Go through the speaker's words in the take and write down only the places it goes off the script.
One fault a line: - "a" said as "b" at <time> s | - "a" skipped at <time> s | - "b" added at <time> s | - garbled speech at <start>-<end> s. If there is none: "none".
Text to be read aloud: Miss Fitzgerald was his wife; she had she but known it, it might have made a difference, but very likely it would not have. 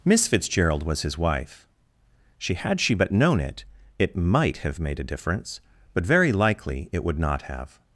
none